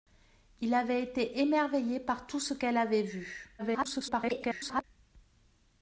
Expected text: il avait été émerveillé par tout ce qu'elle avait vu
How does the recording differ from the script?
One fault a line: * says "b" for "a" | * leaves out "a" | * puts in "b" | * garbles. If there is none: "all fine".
* garbles